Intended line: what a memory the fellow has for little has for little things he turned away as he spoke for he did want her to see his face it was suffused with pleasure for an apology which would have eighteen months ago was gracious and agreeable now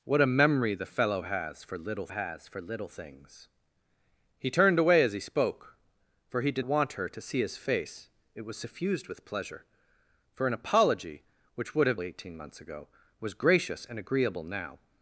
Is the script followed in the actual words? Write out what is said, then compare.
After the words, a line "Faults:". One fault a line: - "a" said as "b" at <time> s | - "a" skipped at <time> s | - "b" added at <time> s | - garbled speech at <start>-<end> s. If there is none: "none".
what a memory the fellow has for little has for little things he turned away as he spoke for he did want her to see his face it was suffused with pleasure for an apology which would have eighteen months ago was gracious and agreeable now
Faults:
none